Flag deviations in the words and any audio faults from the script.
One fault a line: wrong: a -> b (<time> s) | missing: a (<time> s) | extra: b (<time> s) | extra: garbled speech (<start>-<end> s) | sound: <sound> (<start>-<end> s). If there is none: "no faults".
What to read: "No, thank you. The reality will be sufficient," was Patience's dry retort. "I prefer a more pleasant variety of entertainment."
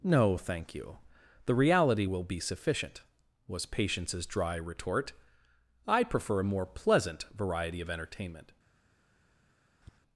sound: tap (9.8-10.0 s)